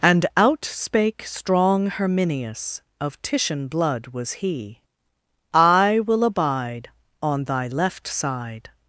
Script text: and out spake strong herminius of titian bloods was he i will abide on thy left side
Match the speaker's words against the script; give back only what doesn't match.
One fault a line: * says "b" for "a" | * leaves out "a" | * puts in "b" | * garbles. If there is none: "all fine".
* says "blood" for "bloods"